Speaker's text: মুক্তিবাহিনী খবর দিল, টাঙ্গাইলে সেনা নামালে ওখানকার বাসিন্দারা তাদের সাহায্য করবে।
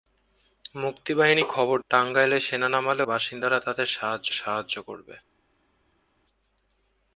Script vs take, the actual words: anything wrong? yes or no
yes